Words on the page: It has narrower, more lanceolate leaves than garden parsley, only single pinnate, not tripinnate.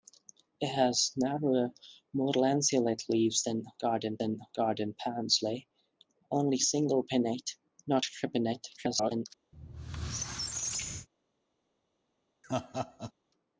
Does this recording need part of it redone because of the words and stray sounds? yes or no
yes